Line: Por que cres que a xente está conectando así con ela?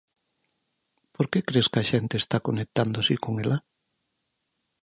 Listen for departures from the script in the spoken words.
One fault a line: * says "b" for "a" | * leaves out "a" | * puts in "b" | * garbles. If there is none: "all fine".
all fine